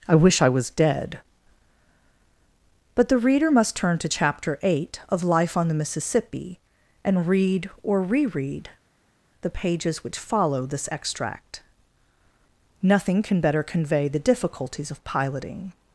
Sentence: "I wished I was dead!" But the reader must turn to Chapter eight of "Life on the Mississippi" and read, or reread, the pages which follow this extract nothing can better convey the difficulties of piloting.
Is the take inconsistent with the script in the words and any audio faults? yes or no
yes